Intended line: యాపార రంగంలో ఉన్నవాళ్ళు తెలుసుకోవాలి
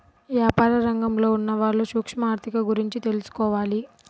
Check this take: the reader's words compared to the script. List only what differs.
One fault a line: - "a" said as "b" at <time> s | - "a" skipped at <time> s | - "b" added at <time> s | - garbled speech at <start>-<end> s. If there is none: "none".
- "సూక్ష్మ ఆర్ధిక గురించి" added at 1.8 s